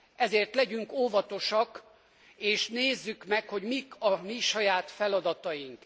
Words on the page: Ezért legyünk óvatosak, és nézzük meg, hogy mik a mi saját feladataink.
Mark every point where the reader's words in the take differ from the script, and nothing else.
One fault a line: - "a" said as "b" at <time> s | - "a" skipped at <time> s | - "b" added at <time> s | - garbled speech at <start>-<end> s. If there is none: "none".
none